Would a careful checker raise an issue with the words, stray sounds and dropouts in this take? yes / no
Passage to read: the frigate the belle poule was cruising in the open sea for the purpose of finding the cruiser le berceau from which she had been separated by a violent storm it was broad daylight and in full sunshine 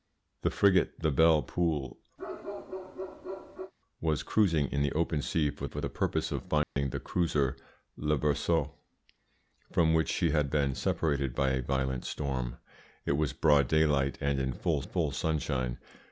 yes